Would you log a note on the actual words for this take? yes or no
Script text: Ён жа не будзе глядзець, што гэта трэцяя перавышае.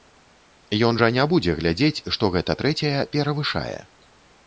no